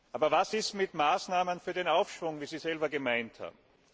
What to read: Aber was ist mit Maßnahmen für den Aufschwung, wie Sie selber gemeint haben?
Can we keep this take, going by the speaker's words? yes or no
yes